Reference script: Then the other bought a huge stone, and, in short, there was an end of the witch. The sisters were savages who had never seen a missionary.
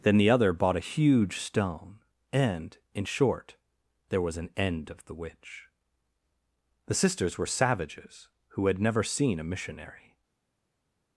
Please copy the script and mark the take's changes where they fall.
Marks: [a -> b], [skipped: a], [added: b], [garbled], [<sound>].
Then the other bought a huge stone, and, in short, there was an end of the witch. The sisters were savages who had never seen a missionary.